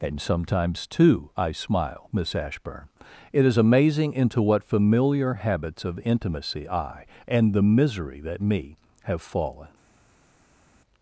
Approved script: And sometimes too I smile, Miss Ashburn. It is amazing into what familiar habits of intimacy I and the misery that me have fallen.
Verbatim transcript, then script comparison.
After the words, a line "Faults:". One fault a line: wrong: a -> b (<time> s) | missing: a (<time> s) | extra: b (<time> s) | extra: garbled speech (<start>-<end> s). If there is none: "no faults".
And sometimes too I smile, Miss Ashburn. It is amazing into what familiar habits of intimacy I and the misery that me have fallen.
Faults:
no faults